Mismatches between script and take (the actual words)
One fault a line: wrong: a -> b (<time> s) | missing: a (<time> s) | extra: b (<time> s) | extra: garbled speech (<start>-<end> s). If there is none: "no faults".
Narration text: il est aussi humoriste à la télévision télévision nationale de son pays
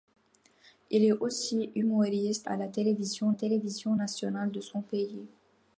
no faults